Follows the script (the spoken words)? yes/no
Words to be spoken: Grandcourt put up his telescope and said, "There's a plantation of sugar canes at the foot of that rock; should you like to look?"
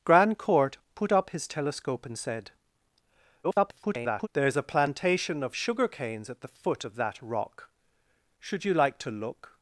no